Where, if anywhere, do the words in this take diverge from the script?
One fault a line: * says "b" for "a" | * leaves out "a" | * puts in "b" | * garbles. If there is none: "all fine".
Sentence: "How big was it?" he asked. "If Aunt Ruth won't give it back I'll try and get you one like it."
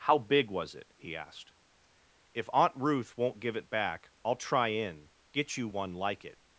* says "in" for "and"